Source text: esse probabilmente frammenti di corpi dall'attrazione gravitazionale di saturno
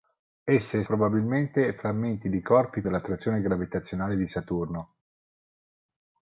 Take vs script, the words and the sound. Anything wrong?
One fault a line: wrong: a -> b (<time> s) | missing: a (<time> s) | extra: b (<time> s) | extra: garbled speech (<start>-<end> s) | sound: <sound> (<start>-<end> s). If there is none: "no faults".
no faults